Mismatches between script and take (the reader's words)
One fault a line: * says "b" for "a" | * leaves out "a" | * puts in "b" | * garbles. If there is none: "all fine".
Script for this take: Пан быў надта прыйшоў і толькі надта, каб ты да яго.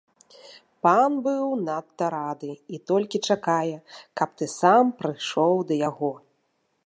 * says "рады" for "прыйшоў"
* says "чакае" for "надта"
* puts in "сам прыйшоў"